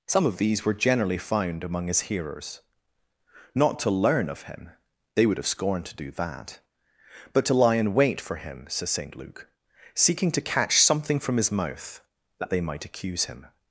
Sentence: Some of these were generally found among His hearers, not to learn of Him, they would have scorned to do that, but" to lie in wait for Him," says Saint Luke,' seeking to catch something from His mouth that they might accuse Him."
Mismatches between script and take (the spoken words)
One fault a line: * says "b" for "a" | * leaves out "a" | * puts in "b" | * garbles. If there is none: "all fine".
all fine